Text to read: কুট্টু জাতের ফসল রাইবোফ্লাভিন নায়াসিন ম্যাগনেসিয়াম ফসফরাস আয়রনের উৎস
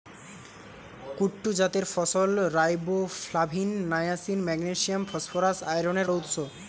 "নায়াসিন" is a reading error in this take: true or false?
false